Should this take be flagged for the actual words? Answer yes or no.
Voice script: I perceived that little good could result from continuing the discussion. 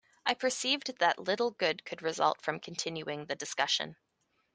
no